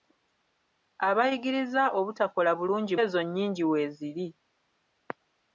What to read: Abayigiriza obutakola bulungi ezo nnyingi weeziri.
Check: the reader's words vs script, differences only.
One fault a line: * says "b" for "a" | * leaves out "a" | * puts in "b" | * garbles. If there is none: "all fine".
all fine